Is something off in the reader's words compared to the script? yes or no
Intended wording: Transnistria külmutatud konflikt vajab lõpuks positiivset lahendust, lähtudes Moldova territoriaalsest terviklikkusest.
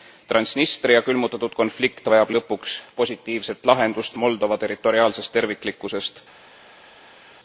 yes